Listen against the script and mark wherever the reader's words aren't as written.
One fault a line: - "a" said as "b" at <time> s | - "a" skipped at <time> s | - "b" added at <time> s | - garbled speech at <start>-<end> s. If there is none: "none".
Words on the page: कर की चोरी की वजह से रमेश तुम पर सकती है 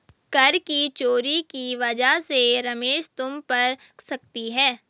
none